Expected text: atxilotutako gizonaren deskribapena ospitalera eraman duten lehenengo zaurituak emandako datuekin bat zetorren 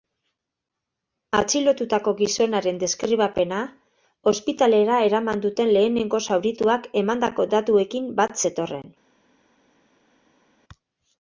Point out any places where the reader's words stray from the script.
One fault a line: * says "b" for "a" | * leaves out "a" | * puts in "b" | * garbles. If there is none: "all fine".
all fine